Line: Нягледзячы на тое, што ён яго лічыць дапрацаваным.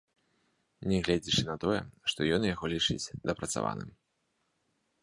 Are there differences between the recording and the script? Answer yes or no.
no